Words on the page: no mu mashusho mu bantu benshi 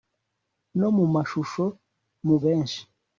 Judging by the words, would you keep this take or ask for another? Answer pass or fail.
fail